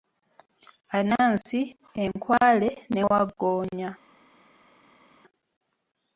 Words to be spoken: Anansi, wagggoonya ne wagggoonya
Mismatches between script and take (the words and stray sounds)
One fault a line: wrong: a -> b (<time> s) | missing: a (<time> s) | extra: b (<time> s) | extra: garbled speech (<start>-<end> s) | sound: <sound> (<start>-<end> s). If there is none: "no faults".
wrong: wagggoonya -> enkwale (2.0 s)